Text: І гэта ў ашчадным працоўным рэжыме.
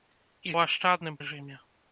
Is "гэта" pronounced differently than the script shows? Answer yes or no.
yes